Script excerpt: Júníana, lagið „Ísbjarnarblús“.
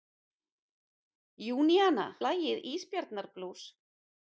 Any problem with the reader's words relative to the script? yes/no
no